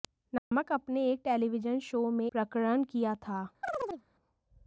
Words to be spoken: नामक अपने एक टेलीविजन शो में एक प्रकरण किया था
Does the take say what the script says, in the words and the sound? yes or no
no